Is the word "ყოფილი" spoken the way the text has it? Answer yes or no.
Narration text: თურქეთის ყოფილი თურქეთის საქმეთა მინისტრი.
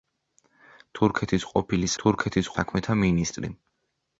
yes